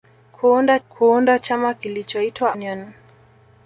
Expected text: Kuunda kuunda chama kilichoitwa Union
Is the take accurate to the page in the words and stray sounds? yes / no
yes